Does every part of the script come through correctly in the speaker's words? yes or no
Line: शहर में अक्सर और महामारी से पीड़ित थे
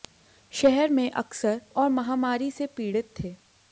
yes